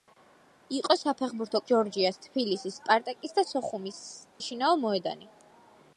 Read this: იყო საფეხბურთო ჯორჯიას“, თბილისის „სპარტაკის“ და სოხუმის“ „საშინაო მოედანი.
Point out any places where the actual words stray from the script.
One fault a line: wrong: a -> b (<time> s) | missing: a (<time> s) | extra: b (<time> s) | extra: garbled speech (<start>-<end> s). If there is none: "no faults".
no faults